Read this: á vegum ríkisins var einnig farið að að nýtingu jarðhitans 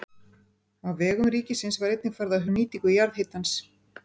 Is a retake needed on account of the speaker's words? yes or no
no